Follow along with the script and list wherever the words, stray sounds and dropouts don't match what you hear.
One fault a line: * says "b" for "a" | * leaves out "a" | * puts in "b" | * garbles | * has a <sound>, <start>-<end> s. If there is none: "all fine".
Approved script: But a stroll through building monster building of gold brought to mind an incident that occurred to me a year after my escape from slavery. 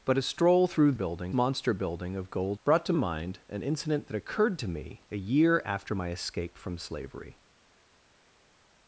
all fine